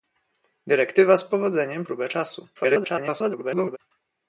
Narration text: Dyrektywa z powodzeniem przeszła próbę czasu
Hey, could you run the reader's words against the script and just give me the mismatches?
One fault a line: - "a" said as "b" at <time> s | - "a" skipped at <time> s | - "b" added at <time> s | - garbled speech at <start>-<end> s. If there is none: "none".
- "przeszła" skipped at 1.8 s
- garbled speech at 2.6-3.8 s